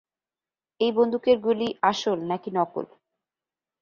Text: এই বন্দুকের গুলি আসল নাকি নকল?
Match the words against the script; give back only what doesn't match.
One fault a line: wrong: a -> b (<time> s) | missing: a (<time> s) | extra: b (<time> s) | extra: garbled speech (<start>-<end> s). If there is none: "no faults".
no faults